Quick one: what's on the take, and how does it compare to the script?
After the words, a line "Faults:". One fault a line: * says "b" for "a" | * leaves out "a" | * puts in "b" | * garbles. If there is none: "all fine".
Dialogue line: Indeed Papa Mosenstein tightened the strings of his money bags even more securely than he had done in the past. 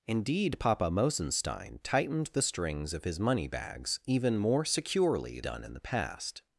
Indeed Papa Mosenstein tightened the strings of his money bags even more securely done in the past.
Faults:
* leaves out "than he had"